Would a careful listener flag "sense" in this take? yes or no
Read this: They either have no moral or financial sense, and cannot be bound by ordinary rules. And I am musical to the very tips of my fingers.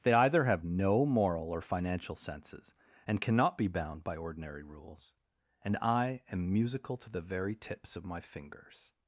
yes